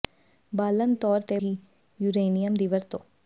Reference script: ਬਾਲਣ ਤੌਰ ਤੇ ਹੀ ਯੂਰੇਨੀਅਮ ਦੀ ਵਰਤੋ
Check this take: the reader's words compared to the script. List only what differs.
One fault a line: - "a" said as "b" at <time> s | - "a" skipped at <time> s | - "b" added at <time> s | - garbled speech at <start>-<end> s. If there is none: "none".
none